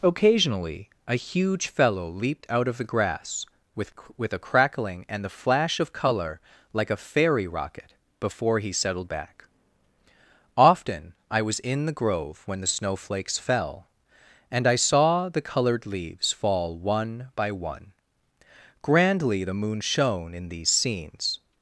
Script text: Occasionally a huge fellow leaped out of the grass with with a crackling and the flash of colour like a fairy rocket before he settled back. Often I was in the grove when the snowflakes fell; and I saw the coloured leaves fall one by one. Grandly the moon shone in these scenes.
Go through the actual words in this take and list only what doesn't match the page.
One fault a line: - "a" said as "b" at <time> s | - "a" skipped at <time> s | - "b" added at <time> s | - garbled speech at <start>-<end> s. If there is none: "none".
none